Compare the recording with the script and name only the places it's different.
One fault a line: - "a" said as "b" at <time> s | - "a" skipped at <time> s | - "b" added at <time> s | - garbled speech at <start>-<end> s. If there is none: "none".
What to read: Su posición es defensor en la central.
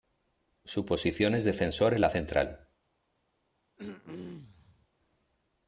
none